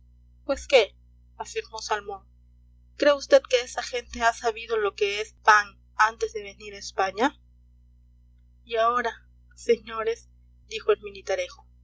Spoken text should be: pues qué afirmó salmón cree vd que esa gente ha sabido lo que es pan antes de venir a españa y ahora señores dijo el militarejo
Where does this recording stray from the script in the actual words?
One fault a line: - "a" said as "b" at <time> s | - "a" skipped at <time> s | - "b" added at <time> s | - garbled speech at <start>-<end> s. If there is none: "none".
none